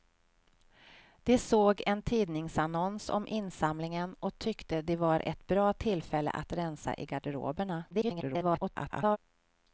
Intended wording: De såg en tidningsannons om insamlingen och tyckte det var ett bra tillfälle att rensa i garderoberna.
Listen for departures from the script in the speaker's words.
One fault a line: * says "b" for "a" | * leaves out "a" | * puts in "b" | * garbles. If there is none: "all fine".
* garbles